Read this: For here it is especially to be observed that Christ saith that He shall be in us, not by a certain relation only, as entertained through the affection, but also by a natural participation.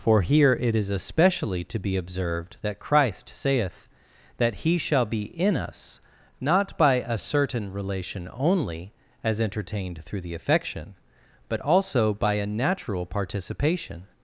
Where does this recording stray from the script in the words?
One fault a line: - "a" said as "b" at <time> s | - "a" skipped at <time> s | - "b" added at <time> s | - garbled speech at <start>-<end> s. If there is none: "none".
none